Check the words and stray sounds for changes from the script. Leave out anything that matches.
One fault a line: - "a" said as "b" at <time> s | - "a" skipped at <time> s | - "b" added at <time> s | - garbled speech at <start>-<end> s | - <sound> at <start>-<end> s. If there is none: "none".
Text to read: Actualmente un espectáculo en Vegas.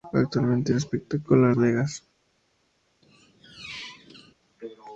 - squeak at 3.0-4.3 s